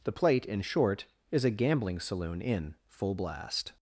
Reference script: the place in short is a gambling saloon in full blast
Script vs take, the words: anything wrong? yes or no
yes